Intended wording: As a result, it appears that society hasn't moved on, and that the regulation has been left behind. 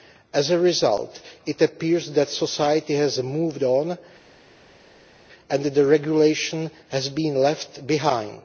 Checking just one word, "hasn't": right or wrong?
wrong